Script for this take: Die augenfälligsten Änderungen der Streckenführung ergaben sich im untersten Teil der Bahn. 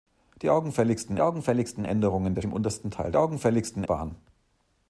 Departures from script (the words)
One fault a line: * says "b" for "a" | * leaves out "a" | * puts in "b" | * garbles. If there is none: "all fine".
* puts in "augenfälligsten"
* leaves out "Streckenführung ergaben sich"
* says "augenfälligsten" for "der"